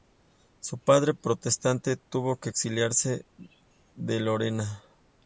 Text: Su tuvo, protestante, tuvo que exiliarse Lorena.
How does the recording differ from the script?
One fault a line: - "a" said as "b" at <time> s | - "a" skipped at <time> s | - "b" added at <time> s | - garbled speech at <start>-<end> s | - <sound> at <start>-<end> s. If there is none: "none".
- "tuvo" said as "padre" at 0.8 s
- "de" added at 3.9 s